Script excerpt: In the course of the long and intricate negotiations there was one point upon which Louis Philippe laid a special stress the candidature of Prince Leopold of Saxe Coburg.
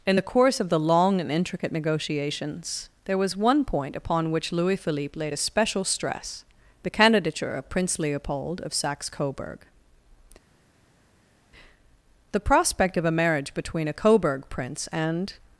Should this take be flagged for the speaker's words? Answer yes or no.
yes